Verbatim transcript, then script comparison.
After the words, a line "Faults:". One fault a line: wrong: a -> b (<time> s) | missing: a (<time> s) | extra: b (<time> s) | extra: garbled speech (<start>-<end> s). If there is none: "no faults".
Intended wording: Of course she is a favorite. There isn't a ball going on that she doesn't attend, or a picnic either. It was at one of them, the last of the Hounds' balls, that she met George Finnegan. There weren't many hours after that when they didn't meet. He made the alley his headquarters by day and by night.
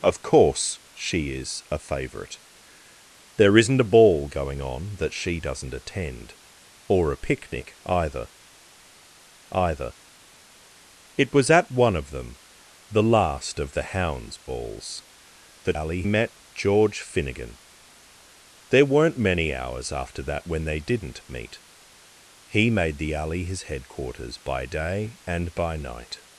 Of course she is a favorite. There isn't a ball going on that she doesn't attend, or a picnic either either. It was at one of them, the last of the Hounds' balls, that alley met George Finnegan. There weren't many hours after that when they didn't meet. He made the alley his headquarters by day and by night.
Faults:
extra: either (9.5 s)
wrong: she -> alley (15.7 s)